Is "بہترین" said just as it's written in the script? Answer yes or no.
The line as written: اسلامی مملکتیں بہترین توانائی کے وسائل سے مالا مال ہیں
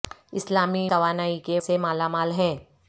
no